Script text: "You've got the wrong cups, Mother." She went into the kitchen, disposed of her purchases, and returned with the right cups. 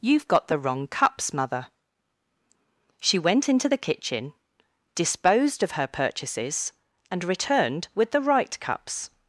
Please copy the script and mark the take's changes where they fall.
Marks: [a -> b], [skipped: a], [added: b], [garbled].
"You've got the wrong cups, Mother." She went into the kitchen, disposed of her purchases, and returned with the right cups.